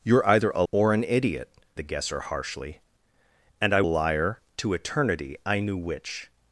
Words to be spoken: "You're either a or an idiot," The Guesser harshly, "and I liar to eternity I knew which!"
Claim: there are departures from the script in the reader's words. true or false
false